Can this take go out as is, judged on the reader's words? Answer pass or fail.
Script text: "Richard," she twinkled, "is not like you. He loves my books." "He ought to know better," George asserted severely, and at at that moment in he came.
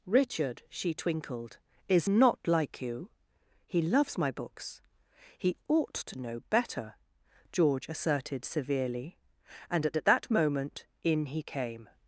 pass